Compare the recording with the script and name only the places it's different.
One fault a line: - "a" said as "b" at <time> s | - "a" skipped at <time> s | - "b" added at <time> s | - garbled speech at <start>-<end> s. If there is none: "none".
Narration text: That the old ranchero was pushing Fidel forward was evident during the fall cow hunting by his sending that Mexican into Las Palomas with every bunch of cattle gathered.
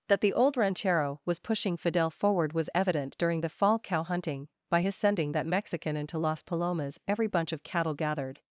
- "with" skipped at 7.0 s